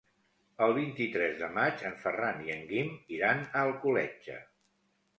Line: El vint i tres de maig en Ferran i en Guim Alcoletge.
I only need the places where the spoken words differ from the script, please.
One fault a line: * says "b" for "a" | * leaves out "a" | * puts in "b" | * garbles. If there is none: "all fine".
* puts in "iran a"